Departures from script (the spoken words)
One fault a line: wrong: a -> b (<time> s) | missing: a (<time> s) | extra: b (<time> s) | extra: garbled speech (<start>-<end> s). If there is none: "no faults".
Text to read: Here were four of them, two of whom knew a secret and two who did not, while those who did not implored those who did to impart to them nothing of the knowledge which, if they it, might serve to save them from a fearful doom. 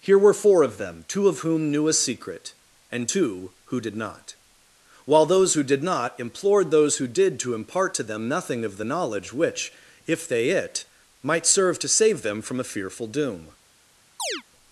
no faults